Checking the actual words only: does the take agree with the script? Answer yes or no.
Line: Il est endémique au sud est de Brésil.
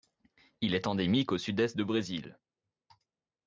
yes